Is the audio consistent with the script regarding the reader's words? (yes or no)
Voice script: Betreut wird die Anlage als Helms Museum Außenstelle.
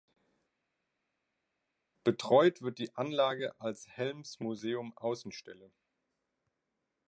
yes